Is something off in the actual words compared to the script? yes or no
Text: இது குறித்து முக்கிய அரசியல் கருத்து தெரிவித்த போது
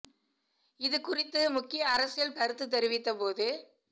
no